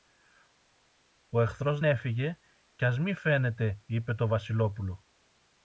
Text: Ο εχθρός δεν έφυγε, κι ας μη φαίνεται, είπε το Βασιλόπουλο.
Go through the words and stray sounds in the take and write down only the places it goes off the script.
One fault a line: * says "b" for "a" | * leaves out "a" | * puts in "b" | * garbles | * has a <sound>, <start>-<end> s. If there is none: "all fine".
* leaves out "δεν"